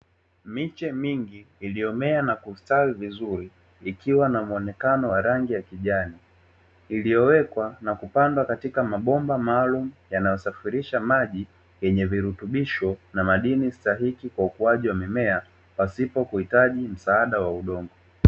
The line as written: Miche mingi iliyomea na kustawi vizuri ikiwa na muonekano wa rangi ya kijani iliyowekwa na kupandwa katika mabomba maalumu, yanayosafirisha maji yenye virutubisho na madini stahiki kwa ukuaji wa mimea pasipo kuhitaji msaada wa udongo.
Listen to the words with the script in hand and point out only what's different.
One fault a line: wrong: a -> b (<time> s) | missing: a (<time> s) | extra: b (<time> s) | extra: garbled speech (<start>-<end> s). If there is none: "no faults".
no faults